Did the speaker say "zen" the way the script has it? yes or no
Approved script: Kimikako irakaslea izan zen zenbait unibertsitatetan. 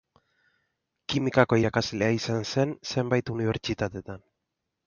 yes